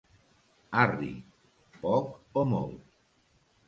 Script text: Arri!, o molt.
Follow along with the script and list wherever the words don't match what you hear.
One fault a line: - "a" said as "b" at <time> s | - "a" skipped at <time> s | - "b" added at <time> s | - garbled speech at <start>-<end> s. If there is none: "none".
- "poc" added at 1.9 s